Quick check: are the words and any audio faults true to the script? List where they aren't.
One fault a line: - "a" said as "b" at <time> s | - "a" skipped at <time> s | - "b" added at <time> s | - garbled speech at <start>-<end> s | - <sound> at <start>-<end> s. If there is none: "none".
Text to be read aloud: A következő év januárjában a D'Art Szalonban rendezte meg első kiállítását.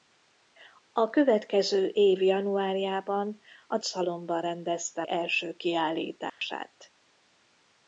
- "D'Art" skipped at 3.8 s
- "meg" skipped at 5.0 s
- dropout at 6.3-6.4 s